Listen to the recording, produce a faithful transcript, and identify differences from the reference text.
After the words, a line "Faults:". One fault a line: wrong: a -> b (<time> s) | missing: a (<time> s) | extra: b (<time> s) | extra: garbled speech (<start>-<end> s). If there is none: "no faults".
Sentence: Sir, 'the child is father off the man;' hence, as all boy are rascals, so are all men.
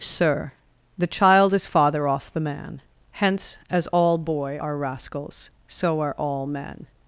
Sir, 'the child is father off the man;' hence, as all boy are rascals, so are all men.
Faults:
no faults